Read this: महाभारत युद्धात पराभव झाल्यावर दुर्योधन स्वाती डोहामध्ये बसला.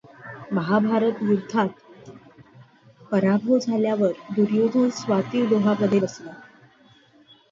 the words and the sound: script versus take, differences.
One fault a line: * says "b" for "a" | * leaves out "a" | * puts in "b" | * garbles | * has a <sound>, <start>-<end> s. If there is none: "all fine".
all fine